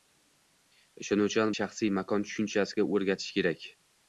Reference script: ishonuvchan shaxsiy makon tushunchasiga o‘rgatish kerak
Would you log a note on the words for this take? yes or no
no